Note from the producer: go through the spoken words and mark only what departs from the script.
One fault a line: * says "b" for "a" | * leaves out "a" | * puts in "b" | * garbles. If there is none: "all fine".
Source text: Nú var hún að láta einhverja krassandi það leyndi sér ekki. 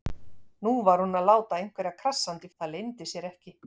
all fine